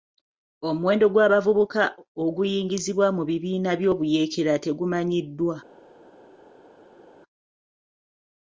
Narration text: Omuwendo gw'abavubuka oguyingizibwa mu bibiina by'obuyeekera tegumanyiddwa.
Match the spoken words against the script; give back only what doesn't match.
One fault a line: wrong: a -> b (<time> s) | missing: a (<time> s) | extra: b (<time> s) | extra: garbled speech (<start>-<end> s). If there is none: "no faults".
no faults